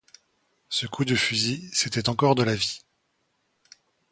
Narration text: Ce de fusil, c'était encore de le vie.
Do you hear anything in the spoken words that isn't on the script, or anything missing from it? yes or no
yes